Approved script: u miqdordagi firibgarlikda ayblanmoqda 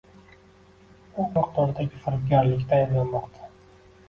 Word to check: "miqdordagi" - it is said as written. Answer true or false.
true